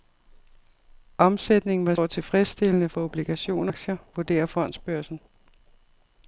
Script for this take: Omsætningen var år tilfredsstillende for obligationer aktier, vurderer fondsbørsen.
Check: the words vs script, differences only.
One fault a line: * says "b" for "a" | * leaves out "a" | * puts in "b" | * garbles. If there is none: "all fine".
all fine